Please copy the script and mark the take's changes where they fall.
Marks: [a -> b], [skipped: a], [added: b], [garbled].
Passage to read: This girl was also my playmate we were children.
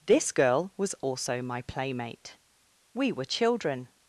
This girl was also my playmate we were children.